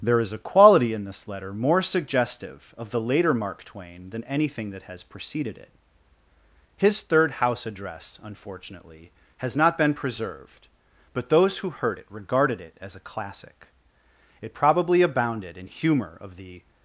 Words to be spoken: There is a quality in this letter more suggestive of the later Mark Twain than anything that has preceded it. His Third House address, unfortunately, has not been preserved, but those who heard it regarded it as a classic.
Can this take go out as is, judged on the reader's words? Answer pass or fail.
fail